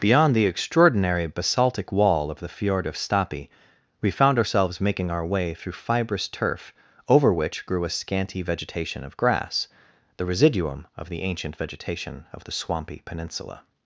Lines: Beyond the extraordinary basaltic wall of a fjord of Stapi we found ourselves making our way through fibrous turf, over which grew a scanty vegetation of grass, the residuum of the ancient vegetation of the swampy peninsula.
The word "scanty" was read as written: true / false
true